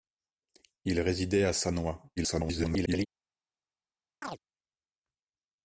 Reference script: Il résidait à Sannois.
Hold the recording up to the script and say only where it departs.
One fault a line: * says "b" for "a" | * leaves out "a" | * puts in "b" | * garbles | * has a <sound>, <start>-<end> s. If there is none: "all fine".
* garbles
* has a chirp, 4.2-4.4 s